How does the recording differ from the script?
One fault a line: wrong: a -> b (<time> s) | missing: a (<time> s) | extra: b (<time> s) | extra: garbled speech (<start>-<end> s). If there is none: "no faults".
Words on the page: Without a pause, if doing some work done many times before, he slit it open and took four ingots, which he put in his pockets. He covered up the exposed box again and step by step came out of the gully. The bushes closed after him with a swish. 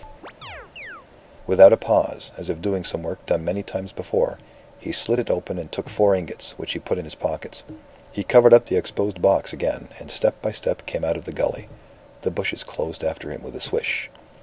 extra: as (2.4 s)